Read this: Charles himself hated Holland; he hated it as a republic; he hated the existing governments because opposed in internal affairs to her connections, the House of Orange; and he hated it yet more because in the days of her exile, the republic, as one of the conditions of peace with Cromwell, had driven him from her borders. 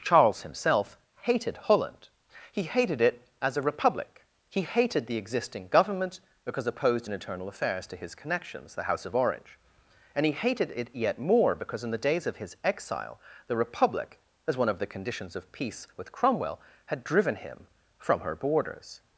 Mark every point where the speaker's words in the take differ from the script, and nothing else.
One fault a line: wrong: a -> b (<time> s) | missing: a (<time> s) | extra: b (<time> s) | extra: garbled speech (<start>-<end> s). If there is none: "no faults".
wrong: governments -> government (5.7 s)
wrong: her -> his (8.0 s)
wrong: her -> his (12.4 s)